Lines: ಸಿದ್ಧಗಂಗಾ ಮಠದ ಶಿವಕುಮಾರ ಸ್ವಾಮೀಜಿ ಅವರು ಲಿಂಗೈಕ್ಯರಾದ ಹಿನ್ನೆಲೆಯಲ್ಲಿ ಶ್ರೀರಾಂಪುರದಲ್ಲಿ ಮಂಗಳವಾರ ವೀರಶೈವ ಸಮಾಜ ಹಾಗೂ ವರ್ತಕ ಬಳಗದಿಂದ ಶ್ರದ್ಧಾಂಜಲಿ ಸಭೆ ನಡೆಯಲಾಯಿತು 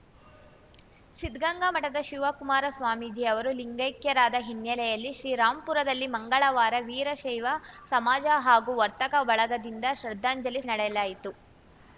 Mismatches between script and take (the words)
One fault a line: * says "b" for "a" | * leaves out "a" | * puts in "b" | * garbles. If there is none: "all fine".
* leaves out "ಸಭೆ"